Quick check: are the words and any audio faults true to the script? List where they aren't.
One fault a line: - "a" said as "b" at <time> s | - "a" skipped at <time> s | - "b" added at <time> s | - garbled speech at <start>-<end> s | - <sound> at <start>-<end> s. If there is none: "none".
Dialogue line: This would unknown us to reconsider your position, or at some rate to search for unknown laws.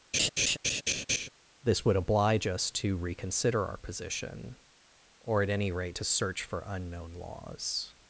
- laugh at 0.1-1.3 s
- "unknown" said as "oblige" at 1.9 s
- "your" said as "our" at 3.6 s
- "some" said as "any" at 5.5 s